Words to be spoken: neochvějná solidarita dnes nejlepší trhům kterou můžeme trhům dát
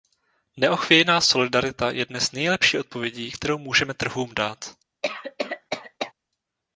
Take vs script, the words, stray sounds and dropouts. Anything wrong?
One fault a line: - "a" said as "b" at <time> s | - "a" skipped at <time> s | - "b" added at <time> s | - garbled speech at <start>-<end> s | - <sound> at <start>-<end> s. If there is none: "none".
- "je" added at 1.9 s
- "trhům" said as "odpovědí" at 2.8 s
- cough at 5.0-6.1 s